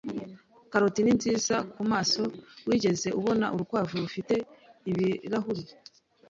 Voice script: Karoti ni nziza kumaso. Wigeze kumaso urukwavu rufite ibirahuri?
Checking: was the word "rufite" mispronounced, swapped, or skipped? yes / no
no